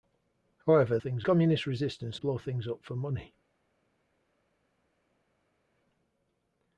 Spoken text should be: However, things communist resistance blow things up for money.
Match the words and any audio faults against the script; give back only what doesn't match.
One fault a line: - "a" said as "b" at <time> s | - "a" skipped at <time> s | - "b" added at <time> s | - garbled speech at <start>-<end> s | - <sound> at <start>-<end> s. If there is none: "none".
none